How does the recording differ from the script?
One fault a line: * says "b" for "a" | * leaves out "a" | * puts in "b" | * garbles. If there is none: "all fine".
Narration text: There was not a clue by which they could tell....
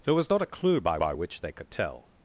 * puts in "by"